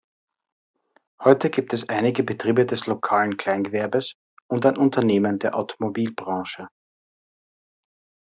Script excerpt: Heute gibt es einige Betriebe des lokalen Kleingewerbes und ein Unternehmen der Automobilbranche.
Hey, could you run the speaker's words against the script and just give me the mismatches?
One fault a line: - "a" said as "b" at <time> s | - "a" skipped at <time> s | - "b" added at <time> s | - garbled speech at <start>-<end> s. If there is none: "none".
none